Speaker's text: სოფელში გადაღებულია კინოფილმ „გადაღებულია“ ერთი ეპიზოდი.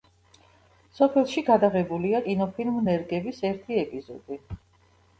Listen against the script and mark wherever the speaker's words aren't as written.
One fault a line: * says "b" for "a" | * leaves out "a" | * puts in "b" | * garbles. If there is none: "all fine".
* says "ნერგების" for "გადაღებულია"